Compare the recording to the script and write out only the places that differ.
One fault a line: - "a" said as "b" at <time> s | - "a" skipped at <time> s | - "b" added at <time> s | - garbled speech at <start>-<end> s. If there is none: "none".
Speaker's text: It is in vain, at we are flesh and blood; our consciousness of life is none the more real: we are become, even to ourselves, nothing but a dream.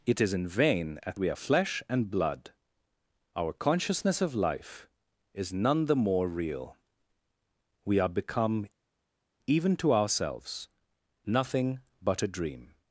none